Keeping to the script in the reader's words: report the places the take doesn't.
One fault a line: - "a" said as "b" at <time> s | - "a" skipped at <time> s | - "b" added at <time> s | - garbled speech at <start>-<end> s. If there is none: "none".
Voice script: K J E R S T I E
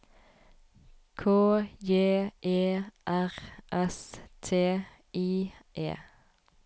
none